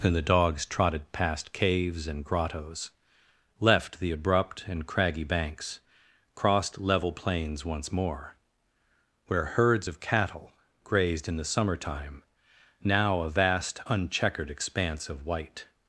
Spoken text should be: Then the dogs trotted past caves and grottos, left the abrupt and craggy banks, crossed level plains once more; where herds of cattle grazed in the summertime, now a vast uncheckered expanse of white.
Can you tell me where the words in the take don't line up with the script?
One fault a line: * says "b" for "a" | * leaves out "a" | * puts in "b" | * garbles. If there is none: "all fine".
* says "And" for "Then"